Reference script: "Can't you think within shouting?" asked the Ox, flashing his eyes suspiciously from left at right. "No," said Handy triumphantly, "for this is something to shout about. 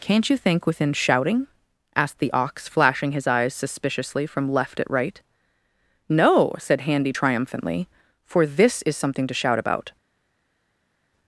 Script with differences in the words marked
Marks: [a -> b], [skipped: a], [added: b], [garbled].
"Can't you think within shouting?" asked the Ox, flashing his eyes suspiciously from left at right. "No," said Handy triumphantly, "for this is something to shout about.